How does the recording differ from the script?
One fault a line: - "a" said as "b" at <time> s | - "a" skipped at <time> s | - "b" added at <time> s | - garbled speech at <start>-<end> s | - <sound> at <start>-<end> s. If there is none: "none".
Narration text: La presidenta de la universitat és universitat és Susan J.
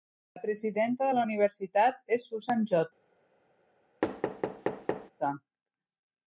- "universitat és" skipped at 2.3 s
- thud at 4.0-5.1 s